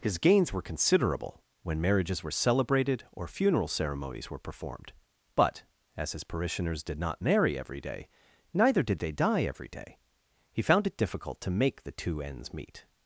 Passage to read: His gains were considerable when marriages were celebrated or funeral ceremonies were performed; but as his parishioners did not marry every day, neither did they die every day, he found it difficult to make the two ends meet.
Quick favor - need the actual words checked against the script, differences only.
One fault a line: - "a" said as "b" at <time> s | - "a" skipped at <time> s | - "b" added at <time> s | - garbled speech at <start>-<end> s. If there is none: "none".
none